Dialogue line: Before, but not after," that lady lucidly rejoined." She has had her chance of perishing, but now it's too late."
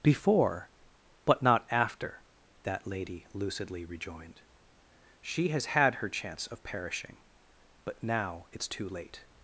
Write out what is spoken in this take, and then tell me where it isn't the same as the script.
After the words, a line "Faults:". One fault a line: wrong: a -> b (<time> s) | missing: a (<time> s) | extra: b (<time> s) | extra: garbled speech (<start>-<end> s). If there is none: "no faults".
Before, but not after," that lady lucidly rejoined." She has had her chance of perishing, but now it's too late."
Faults:
no faults